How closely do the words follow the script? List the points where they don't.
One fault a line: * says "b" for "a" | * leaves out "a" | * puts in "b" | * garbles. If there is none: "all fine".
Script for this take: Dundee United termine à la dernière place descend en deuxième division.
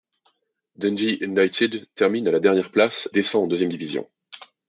all fine